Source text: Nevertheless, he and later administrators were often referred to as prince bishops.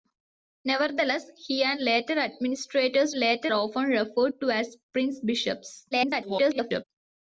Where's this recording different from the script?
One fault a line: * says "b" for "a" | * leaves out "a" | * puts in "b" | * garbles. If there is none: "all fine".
* says "later" for "were"
* garbles